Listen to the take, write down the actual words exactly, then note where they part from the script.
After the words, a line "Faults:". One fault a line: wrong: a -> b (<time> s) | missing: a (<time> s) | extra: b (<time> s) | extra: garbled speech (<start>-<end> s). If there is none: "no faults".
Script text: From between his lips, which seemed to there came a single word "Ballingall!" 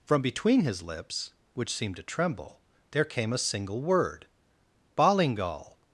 From between his lips, which seemed to tremble, there came a single word "Ballingall!"
Faults:
extra: tremble (2.0 s)